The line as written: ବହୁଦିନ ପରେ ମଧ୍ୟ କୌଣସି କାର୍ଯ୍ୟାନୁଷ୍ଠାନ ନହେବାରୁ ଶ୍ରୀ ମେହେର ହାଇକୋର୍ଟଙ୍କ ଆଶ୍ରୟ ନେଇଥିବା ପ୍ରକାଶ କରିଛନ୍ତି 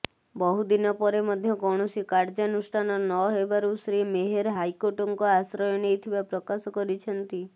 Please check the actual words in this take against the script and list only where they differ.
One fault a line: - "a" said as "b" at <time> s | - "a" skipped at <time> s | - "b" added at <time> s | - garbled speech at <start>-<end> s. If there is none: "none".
none